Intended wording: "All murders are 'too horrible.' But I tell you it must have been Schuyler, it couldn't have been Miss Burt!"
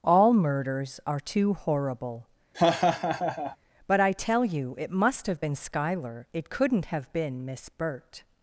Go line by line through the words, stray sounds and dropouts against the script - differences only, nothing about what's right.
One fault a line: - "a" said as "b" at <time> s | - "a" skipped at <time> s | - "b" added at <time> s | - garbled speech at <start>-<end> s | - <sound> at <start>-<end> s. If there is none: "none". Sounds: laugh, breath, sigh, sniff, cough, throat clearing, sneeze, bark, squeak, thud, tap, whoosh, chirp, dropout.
- laugh at 2.5-3.6 s